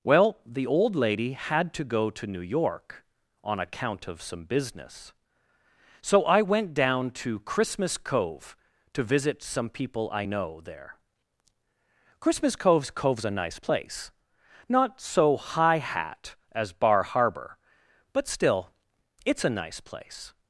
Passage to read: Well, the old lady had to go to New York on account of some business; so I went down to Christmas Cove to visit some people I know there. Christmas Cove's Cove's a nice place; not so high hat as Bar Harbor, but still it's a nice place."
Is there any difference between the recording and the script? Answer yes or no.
no